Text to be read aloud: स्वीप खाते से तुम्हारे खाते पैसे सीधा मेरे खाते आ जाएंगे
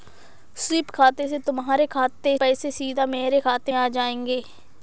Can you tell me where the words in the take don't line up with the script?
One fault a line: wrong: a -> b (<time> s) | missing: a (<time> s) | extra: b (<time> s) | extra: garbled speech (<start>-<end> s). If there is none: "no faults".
no faults